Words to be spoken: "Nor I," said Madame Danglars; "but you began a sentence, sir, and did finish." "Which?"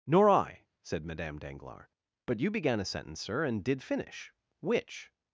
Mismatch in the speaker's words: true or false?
false